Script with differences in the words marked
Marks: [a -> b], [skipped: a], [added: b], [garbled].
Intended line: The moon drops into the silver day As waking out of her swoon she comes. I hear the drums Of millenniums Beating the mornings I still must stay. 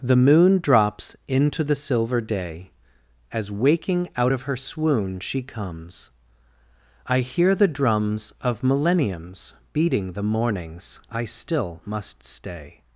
The moon drops into the silver day As waking out of her swoon she comes. I hear the drums Of millenniums Beating the mornings I still must stay.